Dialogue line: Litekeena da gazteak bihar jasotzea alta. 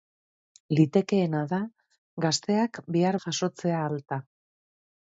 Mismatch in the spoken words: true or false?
false